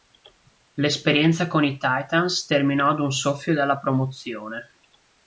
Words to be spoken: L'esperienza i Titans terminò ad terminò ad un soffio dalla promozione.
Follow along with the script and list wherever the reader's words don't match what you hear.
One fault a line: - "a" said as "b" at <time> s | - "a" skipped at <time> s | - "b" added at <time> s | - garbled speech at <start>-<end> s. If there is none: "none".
- "con" added at 1.4 s
- "terminò ad" skipped at 3.0 s